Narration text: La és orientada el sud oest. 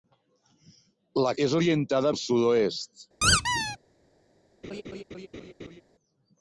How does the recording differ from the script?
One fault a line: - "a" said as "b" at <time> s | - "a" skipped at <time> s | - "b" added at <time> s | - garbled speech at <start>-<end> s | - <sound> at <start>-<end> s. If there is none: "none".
- squeak at 3.2-3.8 s
- laugh at 4.6-5.8 s